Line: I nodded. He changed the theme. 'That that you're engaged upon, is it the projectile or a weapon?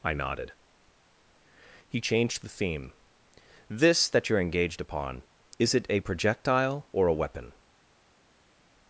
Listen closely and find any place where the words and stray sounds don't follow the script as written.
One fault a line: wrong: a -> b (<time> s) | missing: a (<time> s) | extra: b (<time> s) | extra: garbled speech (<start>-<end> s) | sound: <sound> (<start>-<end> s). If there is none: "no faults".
wrong: That -> This (3.7 s)
wrong: the -> a (5.9 s)